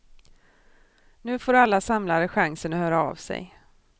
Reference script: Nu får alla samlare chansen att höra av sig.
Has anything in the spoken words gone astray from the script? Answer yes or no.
no